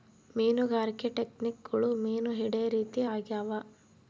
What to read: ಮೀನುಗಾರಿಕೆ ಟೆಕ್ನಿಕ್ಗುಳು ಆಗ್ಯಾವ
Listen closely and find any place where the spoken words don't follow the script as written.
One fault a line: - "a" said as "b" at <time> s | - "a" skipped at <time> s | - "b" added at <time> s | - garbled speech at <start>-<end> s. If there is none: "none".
- "ಮೀನು ಹಿಡೇ ರೀತಿ" added at 1.9 s